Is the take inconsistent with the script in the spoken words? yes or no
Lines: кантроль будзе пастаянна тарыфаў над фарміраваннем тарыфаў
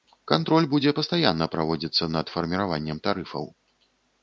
yes